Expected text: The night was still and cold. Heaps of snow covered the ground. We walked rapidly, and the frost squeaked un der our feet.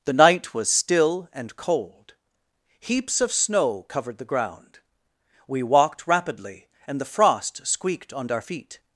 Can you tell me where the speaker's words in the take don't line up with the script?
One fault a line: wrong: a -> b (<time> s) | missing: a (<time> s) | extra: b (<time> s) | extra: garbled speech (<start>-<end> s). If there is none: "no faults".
wrong: un der -> on (8.1 s)